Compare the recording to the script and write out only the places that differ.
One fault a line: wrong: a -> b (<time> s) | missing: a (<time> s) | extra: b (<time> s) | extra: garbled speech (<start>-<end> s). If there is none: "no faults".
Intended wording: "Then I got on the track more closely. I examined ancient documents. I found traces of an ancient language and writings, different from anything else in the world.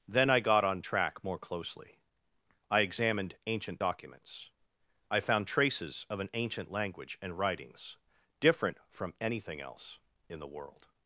missing: the (0.8 s)